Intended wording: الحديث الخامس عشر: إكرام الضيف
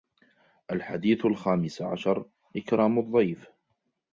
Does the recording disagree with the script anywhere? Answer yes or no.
no